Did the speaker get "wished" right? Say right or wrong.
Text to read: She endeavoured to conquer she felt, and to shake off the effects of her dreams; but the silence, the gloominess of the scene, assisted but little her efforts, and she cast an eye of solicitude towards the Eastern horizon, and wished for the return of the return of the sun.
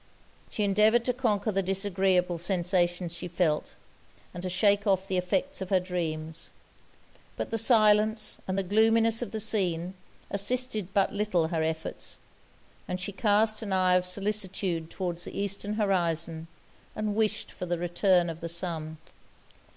right